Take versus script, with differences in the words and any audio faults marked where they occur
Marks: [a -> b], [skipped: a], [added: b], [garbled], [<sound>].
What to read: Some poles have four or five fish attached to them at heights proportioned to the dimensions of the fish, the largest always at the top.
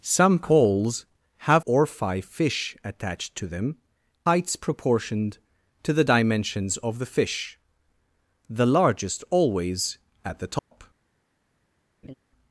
Some poles have [skipped: four] or five fish attached to them [skipped: at] heights proportioned to the dimensions of the fish, the largest always at the top. [dropout] [laugh]